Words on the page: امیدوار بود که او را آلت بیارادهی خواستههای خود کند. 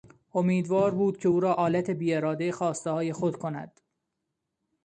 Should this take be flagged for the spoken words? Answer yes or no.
no